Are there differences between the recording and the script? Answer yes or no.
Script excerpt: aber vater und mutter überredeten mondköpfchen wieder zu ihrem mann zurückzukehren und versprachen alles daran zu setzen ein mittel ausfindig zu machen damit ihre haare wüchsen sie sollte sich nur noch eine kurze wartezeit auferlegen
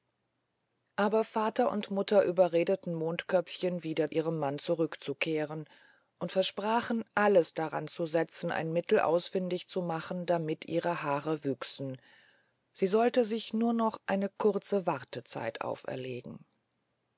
yes